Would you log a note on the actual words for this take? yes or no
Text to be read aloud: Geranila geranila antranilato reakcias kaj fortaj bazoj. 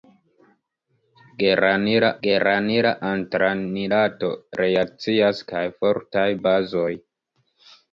no